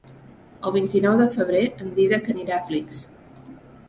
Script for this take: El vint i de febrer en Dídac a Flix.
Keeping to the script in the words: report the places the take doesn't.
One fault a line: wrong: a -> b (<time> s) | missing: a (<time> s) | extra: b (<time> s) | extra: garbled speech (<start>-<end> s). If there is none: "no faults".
extra: nou (1.0 s)
extra: anirà (2.3 s)